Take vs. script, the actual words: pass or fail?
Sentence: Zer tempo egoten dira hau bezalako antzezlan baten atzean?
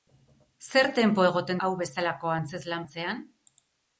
fail